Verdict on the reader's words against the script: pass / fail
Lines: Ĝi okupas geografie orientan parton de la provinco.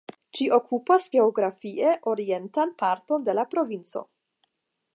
pass